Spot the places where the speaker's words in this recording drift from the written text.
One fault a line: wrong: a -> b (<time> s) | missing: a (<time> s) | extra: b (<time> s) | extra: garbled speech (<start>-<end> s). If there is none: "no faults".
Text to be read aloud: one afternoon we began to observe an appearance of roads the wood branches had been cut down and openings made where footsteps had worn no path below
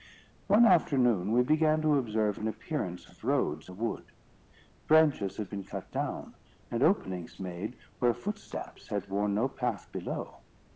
no faults